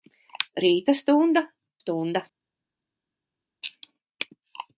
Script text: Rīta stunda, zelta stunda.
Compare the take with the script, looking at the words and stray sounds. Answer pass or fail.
fail